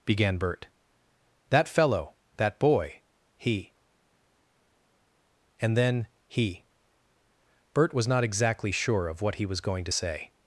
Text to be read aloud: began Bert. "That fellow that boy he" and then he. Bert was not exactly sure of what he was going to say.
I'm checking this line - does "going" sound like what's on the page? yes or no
yes